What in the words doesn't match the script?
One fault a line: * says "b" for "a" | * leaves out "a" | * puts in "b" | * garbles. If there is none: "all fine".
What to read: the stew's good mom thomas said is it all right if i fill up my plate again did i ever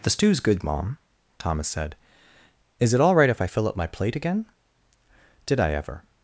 all fine